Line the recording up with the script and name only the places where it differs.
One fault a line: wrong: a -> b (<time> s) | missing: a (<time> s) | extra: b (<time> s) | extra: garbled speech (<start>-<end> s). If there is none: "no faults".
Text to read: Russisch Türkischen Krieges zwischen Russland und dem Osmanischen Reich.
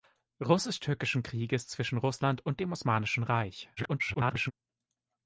extra: garbled speech (3.8-4.5 s)